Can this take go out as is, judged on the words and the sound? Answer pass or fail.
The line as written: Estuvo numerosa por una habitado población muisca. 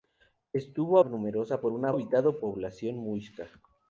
pass